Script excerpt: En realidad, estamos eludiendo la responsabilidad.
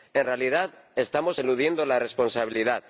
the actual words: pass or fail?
pass